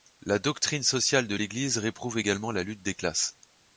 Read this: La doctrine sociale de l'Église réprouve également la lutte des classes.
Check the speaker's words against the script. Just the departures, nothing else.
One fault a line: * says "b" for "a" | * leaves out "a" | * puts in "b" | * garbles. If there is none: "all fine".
all fine